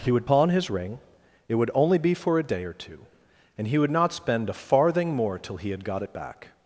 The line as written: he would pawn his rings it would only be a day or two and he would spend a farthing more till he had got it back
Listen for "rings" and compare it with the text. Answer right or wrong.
wrong